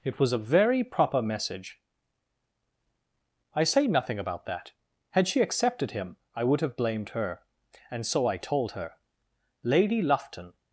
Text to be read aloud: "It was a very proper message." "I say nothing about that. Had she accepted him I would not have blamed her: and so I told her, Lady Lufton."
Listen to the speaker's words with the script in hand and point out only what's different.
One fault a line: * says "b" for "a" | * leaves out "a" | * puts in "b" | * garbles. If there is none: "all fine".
* leaves out "not"